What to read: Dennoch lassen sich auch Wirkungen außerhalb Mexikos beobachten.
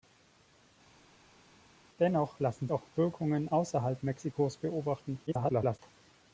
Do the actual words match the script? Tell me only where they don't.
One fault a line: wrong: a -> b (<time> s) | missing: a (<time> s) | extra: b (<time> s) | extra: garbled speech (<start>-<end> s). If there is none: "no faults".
missing: sich (2.7 s)
extra: garbled speech (5.3-5.8 s)